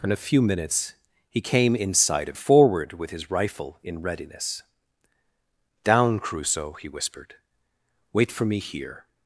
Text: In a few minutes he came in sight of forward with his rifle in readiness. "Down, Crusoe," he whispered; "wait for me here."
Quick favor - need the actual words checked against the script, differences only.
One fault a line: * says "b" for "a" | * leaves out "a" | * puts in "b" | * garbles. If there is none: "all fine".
all fine